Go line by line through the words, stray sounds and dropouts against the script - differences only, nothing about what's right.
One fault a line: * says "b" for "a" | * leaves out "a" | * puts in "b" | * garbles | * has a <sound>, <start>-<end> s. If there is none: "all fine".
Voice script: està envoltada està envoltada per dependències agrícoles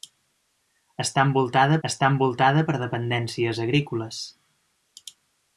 all fine